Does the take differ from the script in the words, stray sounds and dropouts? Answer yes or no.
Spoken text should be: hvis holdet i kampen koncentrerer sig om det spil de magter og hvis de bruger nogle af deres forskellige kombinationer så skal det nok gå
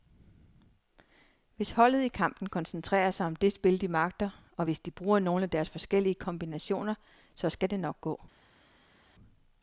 no